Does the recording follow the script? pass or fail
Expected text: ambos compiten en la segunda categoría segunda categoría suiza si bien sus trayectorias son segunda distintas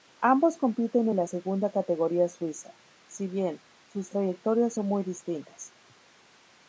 fail